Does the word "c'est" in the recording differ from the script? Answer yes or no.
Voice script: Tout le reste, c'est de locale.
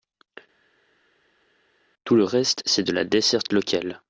no